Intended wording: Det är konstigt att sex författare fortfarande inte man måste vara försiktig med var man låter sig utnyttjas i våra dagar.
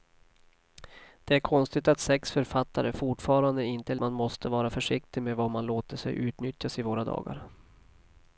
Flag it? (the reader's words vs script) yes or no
no